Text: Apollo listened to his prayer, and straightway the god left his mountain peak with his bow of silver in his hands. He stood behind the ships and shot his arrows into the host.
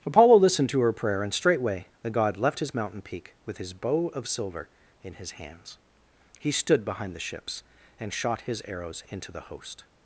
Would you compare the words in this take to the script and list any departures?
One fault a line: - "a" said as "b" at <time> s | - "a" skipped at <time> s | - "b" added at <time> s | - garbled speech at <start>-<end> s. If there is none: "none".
- "his" said as "her" at 0.8 s